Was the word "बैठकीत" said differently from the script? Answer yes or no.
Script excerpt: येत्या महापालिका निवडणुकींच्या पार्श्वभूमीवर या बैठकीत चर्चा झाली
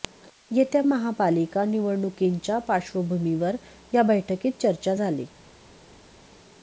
no